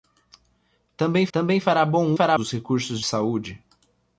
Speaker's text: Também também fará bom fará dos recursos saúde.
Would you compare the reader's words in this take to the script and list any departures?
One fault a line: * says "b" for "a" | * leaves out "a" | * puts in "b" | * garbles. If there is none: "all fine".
all fine